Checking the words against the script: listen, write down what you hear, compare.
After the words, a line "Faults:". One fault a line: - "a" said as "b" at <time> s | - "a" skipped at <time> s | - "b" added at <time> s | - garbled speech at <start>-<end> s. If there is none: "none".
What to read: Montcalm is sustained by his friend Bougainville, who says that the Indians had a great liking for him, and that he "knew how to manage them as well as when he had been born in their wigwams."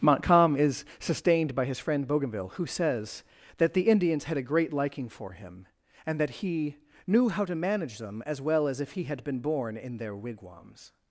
Montcalm is sustained by his friend Bougainville, who says that the Indians had a great liking for him, and that he "knew how to manage them as well as if he had been born in their wigwams."
Faults:
- "when" said as "if" at 8.8 s